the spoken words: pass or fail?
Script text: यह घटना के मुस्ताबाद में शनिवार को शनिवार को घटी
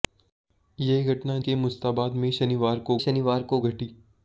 pass